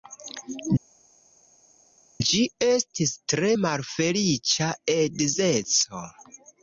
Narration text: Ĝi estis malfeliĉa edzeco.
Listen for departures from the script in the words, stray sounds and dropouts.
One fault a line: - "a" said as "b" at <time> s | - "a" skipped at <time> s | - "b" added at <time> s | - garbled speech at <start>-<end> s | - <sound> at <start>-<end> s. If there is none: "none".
- "tre" added at 3.3 s